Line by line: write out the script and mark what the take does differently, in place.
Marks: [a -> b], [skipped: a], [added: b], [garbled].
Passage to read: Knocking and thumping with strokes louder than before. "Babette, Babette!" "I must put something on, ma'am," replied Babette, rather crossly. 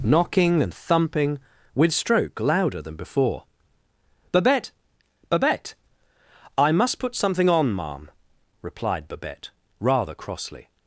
Knocking and thumping with [strokes -> stroke] louder than before. "Babette, Babette!" "I must put something on, ma'am," replied Babette, rather crossly.